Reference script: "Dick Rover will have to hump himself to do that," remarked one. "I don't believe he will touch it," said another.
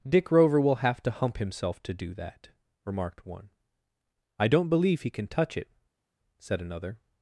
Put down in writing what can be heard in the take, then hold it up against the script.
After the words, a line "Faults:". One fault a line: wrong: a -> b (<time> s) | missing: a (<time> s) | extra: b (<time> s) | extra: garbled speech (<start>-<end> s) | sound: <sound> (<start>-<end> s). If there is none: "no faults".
"Dick Rover will have to hump himself to do that," remarked one. "I don't believe he can touch it," said another.
Faults:
wrong: will -> can (5.1 s)